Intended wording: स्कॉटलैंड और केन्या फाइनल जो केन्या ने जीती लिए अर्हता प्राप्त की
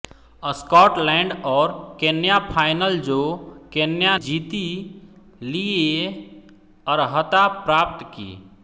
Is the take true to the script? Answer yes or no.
no